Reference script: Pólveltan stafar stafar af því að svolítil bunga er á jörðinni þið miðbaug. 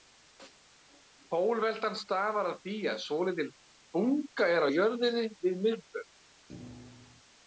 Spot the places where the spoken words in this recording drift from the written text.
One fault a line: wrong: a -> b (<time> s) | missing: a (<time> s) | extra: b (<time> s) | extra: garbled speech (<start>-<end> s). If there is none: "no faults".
missing: stafar (2.5 s)
wrong: þið -> við (5.5 s)